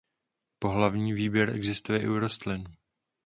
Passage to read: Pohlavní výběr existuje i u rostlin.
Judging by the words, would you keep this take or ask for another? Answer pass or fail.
pass